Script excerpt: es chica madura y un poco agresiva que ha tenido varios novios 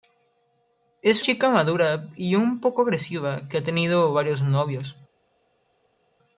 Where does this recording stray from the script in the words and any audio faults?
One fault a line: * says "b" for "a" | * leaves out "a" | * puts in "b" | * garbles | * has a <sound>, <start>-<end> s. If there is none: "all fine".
all fine